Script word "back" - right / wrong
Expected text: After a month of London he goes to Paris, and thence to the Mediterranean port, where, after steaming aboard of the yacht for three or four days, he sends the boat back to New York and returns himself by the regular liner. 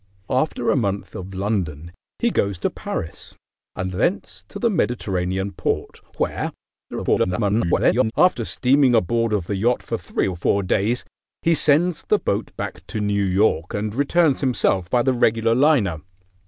right